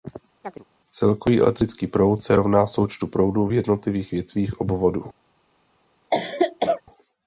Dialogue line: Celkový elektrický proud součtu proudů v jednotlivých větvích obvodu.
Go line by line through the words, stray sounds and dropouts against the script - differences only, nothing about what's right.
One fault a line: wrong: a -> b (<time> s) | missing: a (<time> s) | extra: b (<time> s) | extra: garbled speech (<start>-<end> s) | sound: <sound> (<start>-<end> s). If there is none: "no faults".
sound: chirp (0.4-0.6 s)
extra: se rovná (2.2 s)
sound: cough (6.1-6.8 s)